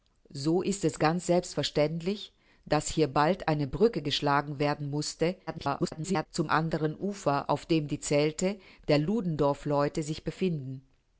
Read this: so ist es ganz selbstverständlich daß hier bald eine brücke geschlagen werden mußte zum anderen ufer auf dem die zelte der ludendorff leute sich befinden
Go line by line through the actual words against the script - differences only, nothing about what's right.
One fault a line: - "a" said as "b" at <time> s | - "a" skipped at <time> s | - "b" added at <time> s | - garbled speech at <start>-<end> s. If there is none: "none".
- garbled speech at 5.5-6.3 s